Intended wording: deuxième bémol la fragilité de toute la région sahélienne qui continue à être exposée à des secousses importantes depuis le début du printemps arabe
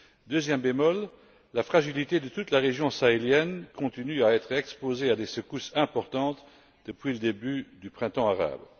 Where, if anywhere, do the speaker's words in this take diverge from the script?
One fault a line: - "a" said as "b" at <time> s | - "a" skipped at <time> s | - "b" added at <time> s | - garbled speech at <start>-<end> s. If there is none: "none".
- "qui" skipped at 3.6 s